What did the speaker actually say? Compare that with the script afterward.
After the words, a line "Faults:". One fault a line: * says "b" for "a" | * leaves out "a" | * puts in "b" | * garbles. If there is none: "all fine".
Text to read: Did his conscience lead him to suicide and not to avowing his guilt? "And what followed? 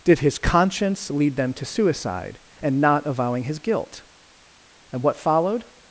Did his conscience lead them to suicide and not avowing his guilt? "And what followed?
Faults:
* says "them" for "him"
* leaves out "to"